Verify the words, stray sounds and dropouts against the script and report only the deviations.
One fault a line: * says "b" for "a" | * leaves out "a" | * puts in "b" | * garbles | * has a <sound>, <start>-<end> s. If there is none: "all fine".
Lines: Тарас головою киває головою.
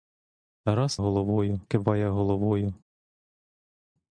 all fine